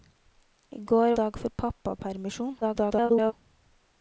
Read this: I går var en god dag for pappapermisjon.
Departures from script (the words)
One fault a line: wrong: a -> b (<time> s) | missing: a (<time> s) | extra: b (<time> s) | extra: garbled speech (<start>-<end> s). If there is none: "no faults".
missing: var en god (1.1 s)
extra: garbled speech (2.6-3.3 s)